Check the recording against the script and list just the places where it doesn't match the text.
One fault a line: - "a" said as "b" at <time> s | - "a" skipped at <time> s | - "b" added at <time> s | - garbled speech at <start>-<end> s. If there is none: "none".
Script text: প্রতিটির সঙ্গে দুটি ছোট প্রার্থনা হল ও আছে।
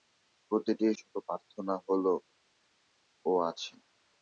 - "সঙ্গে দুটি" skipped at 0.9 s